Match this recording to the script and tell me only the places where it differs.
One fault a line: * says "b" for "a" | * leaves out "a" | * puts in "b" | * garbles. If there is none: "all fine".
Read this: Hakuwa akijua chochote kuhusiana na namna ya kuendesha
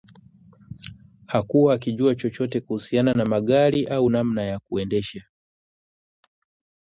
* puts in "magari au"